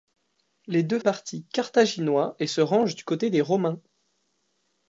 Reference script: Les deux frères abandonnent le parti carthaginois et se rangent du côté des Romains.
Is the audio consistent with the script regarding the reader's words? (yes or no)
no